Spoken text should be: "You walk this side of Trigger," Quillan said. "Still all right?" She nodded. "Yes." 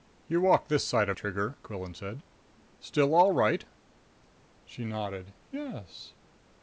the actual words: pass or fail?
pass